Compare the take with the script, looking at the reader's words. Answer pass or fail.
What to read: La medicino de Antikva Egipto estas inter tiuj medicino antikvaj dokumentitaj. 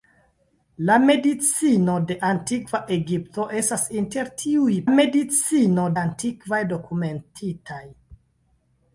pass